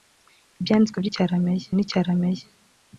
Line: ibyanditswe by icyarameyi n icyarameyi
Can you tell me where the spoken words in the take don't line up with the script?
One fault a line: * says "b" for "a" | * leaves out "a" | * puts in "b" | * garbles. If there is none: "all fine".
all fine